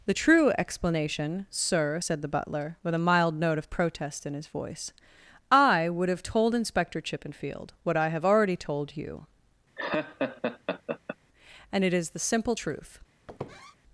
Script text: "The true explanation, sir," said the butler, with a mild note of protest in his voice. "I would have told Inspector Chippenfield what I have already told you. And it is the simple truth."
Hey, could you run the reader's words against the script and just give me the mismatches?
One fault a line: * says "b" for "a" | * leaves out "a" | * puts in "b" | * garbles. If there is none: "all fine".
all fine